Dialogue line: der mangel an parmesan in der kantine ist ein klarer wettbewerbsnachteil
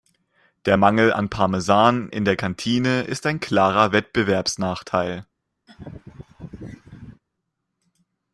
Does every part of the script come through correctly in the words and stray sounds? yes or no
no